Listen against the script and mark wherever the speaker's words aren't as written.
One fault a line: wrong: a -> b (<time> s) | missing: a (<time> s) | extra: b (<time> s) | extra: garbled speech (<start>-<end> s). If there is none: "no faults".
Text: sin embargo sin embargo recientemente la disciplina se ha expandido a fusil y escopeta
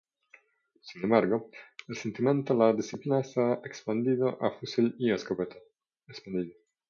missing: sin embargo (1.5 s)